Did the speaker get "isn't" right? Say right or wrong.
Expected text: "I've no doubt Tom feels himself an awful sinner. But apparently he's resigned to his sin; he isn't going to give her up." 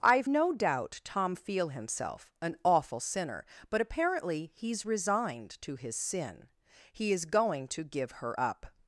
wrong